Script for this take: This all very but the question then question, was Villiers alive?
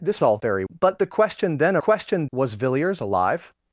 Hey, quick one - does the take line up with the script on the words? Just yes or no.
yes